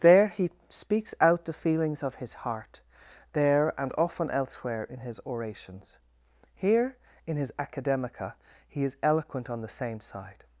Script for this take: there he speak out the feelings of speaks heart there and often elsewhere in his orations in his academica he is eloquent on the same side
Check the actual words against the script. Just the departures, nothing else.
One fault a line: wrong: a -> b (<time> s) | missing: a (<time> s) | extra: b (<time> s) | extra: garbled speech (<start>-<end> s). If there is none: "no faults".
wrong: speak -> speaks (0.7 s)
wrong: speaks -> his (2.1 s)
extra: here (6.5 s)